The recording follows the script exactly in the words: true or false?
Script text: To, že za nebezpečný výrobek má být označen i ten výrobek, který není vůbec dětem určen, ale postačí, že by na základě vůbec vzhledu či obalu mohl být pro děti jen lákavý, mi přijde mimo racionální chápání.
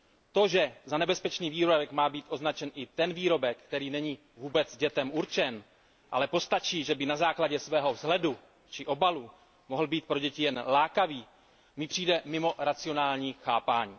false